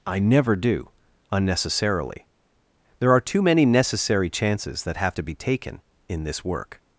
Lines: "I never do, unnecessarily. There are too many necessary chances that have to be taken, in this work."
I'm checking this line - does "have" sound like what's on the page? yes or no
yes